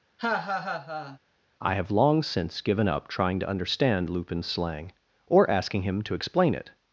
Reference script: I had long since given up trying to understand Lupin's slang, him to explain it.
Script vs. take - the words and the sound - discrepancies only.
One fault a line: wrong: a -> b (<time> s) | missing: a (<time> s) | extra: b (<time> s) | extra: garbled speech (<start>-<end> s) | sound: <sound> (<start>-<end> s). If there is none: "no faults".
sound: laugh (0.2-1.2 s)
wrong: had -> have (1.7 s)
extra: or asking (5.3 s)